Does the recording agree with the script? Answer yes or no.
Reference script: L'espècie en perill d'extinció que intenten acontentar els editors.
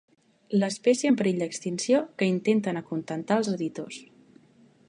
yes